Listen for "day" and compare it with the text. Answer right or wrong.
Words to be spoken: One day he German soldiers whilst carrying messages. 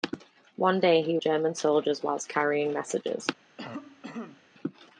right